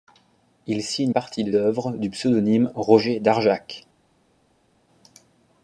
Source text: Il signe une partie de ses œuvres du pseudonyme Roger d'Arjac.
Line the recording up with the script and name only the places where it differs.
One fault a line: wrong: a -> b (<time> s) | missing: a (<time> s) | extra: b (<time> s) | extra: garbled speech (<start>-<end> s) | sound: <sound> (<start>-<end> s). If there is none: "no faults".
missing: une (1.1 s)
missing: ses (1.5 s)